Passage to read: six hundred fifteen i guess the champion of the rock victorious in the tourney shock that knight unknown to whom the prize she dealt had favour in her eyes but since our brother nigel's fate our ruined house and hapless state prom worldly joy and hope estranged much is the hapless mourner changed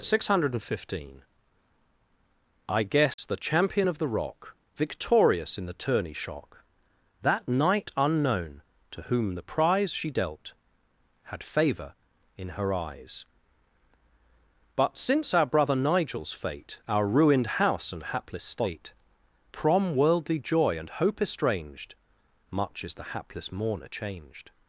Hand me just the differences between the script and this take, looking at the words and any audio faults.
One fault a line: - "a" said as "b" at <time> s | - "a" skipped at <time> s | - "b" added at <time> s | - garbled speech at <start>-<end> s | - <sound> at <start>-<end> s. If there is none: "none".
- dropout at 3.1-3.2 s